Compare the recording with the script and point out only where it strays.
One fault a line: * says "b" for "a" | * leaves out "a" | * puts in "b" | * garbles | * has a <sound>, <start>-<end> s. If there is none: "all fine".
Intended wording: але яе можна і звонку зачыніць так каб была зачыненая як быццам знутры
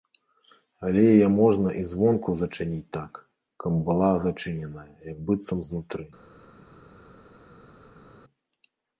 all fine